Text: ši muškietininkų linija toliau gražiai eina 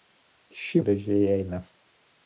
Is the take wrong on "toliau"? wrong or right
wrong